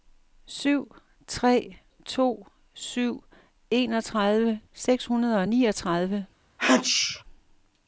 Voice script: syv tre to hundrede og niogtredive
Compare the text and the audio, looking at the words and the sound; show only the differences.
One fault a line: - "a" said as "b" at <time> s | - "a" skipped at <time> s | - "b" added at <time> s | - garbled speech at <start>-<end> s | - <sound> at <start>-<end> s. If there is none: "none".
- "syv enogtredive seks" added at 2.7 s
- sneeze at 6.6-7.2 s